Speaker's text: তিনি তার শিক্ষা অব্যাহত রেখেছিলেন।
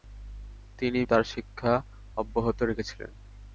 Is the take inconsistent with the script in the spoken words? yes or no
no